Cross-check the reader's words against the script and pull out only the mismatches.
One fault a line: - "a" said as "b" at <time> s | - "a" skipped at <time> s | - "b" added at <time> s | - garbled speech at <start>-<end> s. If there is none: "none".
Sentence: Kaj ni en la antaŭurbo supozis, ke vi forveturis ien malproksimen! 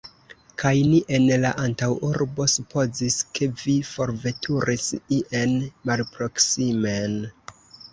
none